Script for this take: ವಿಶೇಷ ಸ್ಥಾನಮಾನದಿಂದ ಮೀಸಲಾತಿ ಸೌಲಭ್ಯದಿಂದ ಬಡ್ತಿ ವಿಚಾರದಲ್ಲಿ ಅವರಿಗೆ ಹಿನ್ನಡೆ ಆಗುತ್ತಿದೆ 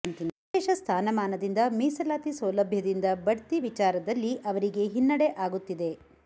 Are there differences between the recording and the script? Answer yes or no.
no